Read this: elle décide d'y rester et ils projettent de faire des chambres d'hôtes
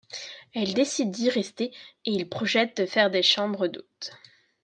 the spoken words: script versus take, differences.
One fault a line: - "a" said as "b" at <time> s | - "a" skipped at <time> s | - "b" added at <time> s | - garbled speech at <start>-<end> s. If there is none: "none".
none